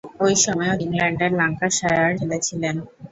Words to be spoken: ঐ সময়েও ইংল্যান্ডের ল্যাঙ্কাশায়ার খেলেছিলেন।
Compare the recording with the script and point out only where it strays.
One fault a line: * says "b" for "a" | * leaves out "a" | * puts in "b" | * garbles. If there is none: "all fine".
all fine